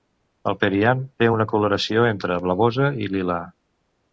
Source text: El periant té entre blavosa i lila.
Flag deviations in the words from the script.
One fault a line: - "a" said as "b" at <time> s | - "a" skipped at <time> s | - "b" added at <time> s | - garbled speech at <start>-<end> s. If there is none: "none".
- "una coloració" added at 1.3 s